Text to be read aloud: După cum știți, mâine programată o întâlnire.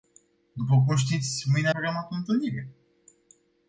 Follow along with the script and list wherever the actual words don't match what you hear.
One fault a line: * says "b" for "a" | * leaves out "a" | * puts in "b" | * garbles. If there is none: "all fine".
all fine